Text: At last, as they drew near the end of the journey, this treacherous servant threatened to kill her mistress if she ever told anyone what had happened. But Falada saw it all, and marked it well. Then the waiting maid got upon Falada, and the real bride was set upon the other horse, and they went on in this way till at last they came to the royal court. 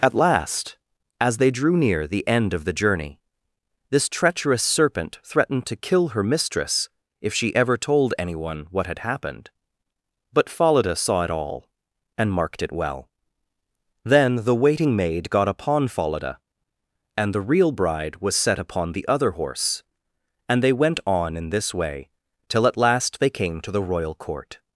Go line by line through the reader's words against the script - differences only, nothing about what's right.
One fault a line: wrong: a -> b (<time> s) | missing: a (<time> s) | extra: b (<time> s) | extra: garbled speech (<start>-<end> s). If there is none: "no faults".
wrong: servant -> serpent (4.6 s)